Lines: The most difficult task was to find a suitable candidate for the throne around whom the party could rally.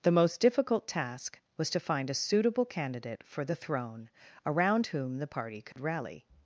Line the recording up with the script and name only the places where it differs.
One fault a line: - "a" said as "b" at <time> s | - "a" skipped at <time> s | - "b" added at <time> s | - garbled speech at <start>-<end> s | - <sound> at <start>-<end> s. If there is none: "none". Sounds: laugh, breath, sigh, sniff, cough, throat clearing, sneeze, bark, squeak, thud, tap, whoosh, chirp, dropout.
- dropout at 5.7-5.8 s